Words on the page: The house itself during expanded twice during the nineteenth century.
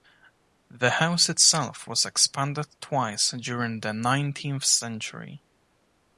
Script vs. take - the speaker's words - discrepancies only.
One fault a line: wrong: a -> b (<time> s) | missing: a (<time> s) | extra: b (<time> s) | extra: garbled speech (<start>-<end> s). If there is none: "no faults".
wrong: during -> was (1.8 s)